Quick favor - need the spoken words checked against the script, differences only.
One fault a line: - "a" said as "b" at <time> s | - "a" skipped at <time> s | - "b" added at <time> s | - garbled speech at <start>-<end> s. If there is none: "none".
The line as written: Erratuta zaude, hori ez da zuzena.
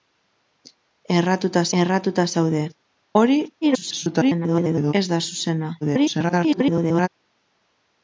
- "erratuta" added at 1.8 s
- garbled speech at 3.6-4.9 s
- garbled speech at 5.8-7.1 s